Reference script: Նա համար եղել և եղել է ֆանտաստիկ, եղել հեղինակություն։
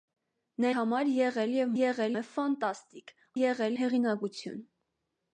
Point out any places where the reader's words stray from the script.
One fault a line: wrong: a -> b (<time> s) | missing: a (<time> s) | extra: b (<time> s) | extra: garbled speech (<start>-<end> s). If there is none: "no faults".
no faults